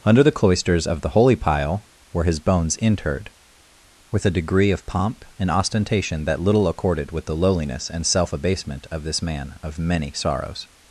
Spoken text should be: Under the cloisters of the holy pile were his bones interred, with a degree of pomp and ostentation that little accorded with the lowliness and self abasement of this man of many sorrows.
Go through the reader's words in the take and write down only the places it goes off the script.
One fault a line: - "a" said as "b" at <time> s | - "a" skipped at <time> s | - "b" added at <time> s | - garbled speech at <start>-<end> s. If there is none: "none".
none